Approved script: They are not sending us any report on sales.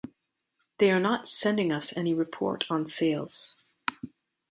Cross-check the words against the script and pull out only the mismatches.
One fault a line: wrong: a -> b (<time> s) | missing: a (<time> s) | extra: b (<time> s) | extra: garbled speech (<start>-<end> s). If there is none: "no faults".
no faults